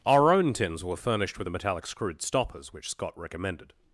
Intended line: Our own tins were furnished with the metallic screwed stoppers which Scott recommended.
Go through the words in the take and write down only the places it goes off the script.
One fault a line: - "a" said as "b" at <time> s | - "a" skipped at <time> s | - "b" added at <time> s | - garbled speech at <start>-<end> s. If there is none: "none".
none